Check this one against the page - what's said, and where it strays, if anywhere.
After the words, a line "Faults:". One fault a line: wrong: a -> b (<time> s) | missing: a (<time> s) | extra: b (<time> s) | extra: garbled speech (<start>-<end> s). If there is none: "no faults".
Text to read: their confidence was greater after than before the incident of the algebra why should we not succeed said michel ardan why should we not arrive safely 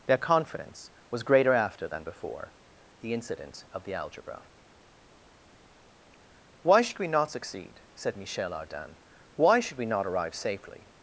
their confidence was greater after than before the incident of the algebra why should we not succeed said michel ardan why should we not arrive safely
Faults:
no faults